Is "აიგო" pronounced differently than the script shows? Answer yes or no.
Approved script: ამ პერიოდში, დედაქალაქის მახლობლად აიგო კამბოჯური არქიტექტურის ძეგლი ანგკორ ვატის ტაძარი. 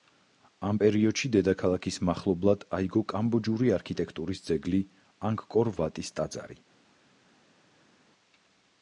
no